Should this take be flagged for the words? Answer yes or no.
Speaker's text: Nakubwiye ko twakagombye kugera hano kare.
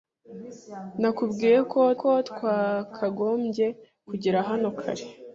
yes